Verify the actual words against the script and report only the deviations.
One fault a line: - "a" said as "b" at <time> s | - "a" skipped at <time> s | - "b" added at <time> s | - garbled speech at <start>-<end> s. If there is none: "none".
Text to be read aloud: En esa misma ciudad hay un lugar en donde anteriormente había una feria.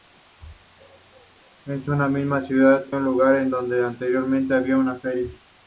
- "hay" skipped at 2.9 s